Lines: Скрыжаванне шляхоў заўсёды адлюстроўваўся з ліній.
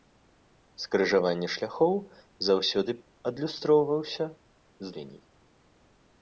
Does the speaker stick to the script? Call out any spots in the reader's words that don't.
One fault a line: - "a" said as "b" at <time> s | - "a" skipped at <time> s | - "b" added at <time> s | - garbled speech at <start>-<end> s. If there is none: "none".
none